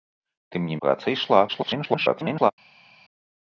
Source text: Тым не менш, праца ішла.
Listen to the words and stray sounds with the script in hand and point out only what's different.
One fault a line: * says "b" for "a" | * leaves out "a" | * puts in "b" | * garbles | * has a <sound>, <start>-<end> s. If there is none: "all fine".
* leaves out "менш"
* garbles